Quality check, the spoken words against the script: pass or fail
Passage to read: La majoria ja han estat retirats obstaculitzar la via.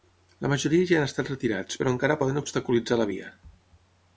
fail